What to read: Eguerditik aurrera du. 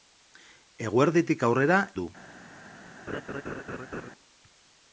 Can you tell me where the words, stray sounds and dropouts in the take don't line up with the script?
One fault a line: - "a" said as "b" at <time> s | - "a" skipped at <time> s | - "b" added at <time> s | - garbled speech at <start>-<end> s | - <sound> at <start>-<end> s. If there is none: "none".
- laugh at 3.1-4.1 s